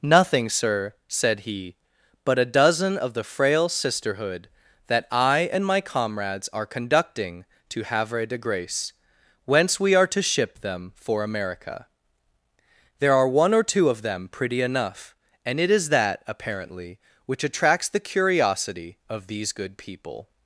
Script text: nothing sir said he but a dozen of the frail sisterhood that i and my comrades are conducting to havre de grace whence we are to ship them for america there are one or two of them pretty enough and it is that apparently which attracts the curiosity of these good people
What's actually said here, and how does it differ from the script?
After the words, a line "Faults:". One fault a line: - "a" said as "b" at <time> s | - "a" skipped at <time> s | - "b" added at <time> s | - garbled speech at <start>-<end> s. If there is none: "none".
nothing sir said he but a dozen of the frail sisterhood that i and my comrades are conducting to havre de grace whence we are to ship them for america there are one or two of them pretty enough and it is that apparently which attracts the curiosity of these good people
Faults:
none